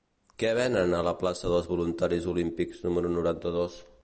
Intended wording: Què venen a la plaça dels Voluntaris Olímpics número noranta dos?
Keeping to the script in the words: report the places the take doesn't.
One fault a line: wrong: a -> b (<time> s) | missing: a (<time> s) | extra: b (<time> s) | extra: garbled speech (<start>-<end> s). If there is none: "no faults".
no faults